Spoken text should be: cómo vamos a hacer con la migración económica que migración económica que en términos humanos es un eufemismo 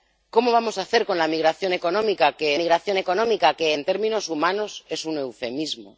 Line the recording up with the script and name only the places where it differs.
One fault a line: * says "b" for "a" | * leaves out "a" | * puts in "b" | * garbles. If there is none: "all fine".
all fine